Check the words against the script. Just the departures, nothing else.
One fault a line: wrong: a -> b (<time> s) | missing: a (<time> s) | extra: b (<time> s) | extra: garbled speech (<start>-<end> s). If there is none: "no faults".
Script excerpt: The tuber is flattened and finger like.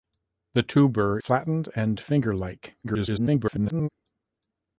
missing: is (1.2 s)
extra: garbled speech (2.8-3.9 s)